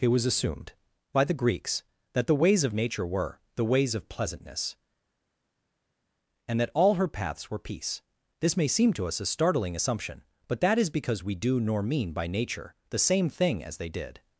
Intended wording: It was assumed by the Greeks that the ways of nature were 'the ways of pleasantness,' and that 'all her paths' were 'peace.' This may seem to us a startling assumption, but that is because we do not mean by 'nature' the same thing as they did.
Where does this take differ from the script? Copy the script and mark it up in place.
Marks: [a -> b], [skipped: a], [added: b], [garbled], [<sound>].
It was assumed by the Greeks that the ways of nature were 'the ways of pleasantness,' and that 'all her paths' were 'peace.' This may seem to us a startling assumption, but that is because we do [not -> nor] mean by 'nature' the same thing as they did.